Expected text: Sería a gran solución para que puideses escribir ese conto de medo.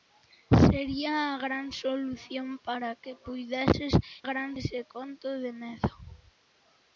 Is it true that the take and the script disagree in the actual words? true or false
true